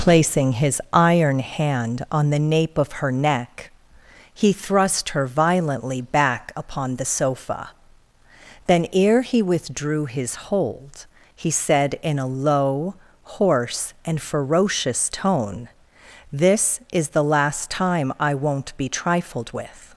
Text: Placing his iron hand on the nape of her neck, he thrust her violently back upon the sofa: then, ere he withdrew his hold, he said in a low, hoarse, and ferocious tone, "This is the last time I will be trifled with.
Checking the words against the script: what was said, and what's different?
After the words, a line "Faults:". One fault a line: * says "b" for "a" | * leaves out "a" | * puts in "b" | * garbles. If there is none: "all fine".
Placing his iron hand on the nape of her neck, he thrust her violently back upon the sofa: then, ere he withdrew his hold, he said in a low, hoarse, and ferocious tone, "This is the last time I won't be trifled with.
Faults:
* says "won't" for "will"